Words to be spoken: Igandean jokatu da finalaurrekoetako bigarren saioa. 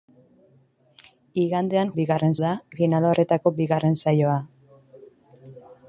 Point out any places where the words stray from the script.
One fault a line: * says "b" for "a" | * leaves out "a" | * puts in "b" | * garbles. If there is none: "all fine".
* says "bigarren" for "jokatu"